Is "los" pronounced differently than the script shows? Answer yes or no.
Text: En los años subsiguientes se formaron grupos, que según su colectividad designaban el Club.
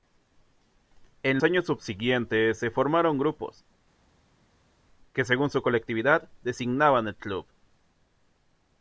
yes